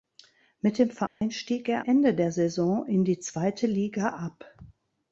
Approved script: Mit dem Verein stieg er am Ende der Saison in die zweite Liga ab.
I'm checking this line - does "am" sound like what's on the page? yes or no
no